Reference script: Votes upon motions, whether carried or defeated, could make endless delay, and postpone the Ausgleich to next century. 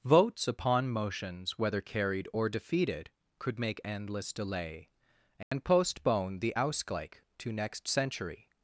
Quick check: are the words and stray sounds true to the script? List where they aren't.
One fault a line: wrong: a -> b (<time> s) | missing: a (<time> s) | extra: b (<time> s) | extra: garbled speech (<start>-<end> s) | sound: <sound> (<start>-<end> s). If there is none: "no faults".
sound: dropout (5.4-5.5 s)